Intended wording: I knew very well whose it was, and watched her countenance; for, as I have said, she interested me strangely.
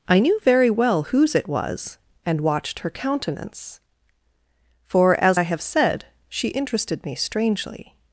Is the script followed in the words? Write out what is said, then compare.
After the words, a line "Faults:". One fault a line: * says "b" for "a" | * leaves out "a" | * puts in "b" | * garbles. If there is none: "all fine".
I knew very well whose it was, and watched her countenance; for, as I have said, she interested me strangely.
Faults:
all fine